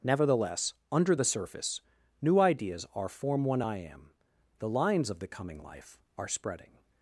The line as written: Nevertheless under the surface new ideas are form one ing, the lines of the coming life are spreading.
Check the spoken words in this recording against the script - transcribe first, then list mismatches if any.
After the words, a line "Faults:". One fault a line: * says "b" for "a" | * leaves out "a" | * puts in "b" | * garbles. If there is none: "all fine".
Nevertheless under the surface new ideas are form one I am, the lines of the coming life are spreading.
Faults:
* says "I am" for "ing"